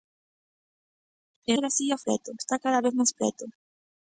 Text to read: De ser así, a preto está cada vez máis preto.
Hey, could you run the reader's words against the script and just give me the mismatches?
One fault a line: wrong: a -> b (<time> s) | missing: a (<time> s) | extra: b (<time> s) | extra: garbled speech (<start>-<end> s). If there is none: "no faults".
no faults